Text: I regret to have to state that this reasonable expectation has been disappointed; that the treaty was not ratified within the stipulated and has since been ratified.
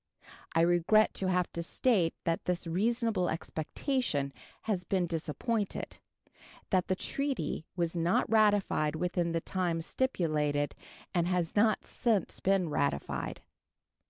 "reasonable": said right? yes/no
yes